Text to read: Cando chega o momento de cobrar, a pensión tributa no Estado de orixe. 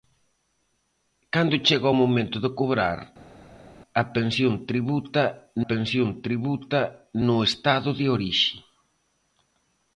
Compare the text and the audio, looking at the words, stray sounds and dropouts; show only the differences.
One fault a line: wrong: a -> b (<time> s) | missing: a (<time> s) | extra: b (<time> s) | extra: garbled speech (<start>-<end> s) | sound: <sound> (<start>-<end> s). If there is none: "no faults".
extra: pensión tributa (5.7 s)